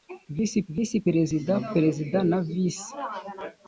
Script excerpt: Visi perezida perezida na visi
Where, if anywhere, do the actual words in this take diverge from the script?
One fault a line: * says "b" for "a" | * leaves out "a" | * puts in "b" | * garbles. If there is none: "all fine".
* puts in "visi"